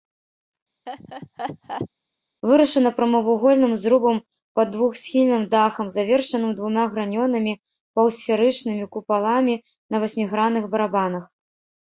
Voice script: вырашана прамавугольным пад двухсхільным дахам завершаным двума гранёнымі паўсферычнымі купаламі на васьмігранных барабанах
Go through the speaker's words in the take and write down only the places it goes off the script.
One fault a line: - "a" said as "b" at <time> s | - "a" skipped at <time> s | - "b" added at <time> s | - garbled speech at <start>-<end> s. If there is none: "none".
- "зрубам" added at 3.9 s